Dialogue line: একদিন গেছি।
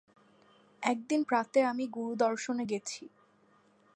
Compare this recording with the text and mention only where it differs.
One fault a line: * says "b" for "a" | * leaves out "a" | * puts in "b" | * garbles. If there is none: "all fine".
* puts in "প্রাতে আমি গুরুদর্শনে"